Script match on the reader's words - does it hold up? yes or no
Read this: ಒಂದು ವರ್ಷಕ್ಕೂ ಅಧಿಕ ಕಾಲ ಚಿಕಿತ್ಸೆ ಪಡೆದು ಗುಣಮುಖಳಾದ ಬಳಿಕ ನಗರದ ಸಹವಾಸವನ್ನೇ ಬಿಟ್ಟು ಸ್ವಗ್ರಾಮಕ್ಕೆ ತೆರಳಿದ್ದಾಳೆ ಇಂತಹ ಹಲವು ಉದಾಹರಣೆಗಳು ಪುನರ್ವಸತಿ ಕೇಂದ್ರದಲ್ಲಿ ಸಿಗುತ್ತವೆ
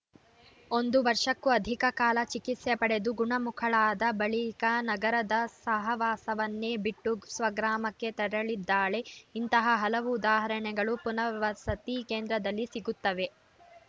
yes